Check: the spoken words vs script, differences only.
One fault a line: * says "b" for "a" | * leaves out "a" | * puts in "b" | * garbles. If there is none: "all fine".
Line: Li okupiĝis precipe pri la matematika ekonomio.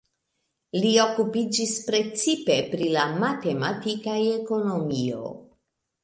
all fine